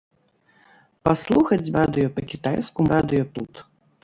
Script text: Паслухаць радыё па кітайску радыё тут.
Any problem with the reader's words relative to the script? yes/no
no